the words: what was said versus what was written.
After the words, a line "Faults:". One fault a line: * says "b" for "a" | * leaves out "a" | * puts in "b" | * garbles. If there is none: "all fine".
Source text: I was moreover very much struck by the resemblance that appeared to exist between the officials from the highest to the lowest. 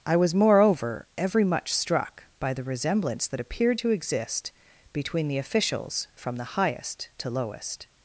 I was moreover every much struck by the resemblance that appeared to exist between the officials from the highest to lowest.
Faults:
* says "every" for "very"
* leaves out "the"